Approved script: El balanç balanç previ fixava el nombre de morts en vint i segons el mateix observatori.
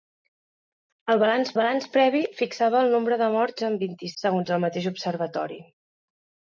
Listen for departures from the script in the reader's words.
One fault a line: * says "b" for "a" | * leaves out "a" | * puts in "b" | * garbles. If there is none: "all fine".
all fine